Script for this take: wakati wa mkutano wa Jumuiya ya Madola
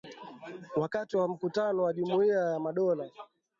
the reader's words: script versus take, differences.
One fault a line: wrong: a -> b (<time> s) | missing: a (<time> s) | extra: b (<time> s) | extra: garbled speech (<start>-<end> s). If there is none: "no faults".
no faults